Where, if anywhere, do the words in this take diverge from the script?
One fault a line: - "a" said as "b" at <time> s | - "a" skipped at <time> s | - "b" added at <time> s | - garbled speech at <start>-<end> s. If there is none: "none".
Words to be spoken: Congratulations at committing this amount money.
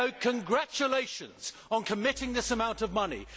- "at" said as "on" at 1.7 s
- "of" added at 2.8 s